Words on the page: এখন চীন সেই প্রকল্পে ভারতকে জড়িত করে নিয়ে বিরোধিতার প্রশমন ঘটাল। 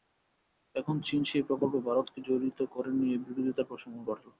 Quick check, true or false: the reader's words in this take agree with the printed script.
true